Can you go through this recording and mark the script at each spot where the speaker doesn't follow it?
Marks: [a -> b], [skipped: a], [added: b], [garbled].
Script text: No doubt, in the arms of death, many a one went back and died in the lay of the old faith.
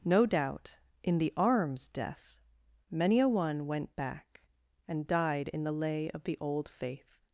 No doubt, in the arms [skipped: of] death, many a one went back and died in the lay of the old faith.